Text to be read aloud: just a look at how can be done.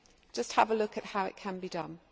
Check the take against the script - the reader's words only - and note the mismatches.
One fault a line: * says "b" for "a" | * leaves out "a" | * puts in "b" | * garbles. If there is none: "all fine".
* puts in "have"
* puts in "it"